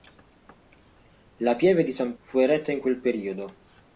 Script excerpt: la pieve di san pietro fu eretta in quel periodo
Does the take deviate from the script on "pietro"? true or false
true